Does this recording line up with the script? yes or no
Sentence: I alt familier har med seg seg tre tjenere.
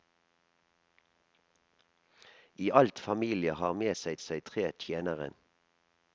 yes